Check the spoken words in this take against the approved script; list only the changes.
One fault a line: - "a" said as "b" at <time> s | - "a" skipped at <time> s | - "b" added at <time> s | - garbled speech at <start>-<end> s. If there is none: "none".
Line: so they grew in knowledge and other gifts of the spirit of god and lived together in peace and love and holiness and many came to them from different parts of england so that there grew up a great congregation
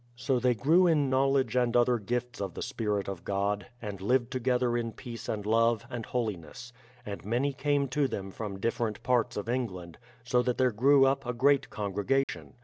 none